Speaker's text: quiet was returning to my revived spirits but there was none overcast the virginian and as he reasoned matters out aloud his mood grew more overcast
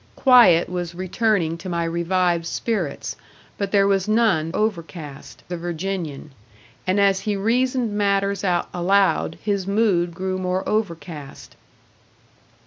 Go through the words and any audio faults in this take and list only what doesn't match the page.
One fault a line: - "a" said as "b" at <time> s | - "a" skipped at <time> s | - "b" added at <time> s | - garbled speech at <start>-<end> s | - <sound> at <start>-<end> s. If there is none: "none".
none